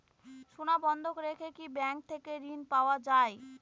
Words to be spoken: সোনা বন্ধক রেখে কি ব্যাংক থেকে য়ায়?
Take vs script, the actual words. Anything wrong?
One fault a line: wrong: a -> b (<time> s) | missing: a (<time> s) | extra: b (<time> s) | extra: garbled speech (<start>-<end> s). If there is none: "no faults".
extra: ঋণ পাওয়া (2.5 s)